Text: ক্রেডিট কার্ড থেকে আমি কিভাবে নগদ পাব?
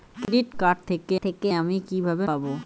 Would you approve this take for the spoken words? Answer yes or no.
no